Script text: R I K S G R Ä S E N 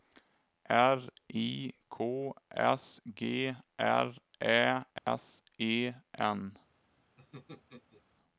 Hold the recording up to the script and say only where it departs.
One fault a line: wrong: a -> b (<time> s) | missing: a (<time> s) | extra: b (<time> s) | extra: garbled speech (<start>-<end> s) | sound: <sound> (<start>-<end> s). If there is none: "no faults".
sound: dropout (5.0-5.1 s)
sound: laugh (7.2-8.0 s)